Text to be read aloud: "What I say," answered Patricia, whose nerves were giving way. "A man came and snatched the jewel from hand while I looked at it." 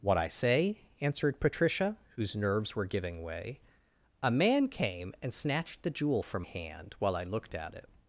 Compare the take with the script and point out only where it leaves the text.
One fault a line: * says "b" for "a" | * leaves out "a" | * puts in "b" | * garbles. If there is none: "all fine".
all fine